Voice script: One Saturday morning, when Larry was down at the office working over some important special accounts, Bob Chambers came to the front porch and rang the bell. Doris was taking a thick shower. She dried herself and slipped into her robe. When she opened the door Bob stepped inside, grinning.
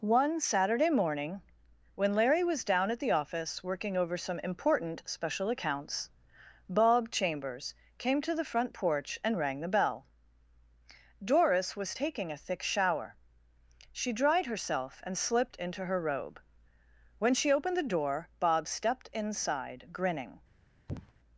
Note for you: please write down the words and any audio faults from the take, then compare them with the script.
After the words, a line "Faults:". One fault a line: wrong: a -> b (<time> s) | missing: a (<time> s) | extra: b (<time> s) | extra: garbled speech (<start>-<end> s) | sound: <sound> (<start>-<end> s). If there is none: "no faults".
One Saturday morning, when Larry was down at the office working over some important special accounts, Bob Chambers came to the front porch and rang the bell. Doris was taking a thick shower. She dried herself and slipped into her robe. When she opened the door Bob stepped inside, grinning.
Faults:
sound: sniff (20.9-21.1 s)